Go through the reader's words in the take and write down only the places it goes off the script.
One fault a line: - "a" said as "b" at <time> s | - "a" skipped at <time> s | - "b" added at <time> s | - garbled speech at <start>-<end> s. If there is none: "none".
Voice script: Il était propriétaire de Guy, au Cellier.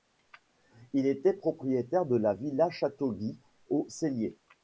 - "la Villa Château" added at 2.1 s